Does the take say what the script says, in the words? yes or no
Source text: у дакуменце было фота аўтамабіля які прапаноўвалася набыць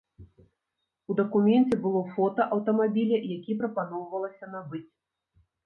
yes